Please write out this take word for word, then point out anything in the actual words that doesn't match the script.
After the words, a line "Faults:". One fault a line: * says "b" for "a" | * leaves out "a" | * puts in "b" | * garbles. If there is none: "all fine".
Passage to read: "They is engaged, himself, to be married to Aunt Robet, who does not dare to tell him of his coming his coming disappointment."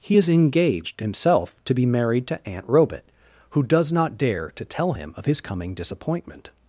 "He is engaged, himself, to be married to Aunt Robet, who does not dare to tell him of his coming disappointment."
Faults:
* says "He" for "They"
* leaves out "his coming"